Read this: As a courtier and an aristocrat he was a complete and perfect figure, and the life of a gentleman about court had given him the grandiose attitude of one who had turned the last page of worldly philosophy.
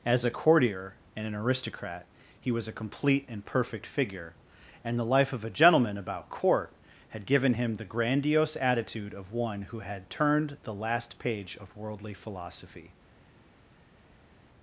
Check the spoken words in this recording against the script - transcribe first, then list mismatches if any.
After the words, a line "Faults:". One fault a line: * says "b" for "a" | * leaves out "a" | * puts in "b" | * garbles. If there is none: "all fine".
As a courtier and an aristocrat he was a complete and perfect figure, and the life of a gentleman about court had given him the grandiose attitude of one who had turned the last page of worldly philosophy.
Faults:
all fine